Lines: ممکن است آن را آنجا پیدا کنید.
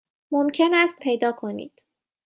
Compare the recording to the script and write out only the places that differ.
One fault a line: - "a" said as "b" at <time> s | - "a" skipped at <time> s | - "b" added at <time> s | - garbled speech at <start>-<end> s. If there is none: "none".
- "آن را آنجا" skipped at 1.0 s